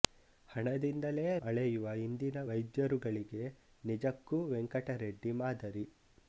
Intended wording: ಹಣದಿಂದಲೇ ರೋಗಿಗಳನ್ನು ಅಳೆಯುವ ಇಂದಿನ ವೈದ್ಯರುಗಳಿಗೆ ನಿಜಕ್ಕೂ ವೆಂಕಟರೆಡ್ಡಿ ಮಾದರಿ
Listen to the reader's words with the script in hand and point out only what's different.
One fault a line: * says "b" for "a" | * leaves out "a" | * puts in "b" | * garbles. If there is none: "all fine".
* leaves out "ರೋಗಿಗಳನ್ನು"